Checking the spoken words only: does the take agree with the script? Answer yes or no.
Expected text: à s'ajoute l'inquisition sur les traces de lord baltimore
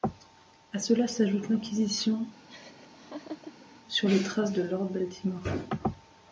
no